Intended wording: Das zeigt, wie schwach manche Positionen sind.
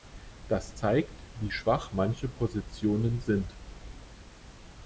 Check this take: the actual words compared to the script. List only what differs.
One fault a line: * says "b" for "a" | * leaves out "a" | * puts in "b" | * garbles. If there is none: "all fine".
all fine